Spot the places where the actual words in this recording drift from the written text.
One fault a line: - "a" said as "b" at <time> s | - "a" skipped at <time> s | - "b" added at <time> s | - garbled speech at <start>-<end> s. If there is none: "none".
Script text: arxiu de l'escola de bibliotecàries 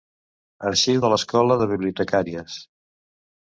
none